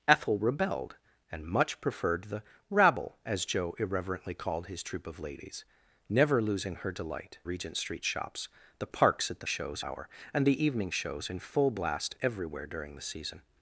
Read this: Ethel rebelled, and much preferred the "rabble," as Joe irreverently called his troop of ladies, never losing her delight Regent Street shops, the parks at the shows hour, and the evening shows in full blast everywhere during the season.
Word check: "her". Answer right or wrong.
right